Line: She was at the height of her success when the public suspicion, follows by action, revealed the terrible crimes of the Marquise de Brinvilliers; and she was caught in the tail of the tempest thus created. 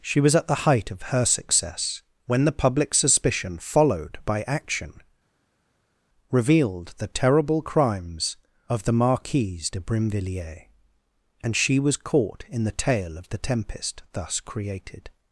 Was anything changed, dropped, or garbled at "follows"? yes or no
yes